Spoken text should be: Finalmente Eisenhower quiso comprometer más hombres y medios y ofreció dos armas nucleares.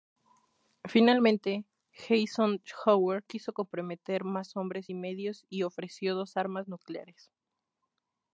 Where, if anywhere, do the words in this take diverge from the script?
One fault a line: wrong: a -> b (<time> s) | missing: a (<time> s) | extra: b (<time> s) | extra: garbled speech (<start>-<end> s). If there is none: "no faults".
no faults